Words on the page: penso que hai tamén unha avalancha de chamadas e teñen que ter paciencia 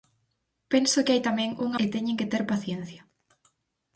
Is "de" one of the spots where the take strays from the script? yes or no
yes